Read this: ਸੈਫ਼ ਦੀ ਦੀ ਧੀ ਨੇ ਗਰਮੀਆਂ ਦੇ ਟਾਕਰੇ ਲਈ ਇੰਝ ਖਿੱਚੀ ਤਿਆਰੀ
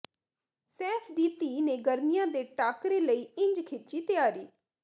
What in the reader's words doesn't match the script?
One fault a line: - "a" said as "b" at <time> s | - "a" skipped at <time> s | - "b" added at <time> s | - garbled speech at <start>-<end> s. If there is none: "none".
- "ਦੀ" skipped at 1.3 s